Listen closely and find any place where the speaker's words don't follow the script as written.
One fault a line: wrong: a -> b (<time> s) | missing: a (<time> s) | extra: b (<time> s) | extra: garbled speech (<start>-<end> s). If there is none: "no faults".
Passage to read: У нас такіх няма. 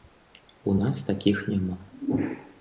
no faults